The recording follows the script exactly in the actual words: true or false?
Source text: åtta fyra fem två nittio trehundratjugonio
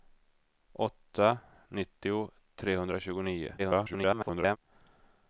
false